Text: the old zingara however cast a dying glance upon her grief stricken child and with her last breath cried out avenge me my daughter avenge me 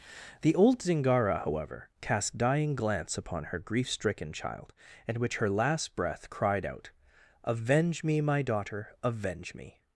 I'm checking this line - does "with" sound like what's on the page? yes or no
no